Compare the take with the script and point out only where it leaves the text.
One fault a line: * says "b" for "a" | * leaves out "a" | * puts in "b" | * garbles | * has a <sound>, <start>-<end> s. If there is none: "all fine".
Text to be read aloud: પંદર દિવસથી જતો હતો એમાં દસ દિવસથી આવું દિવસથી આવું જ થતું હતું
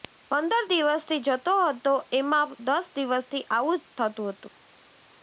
* leaves out "દિવસથી આવું"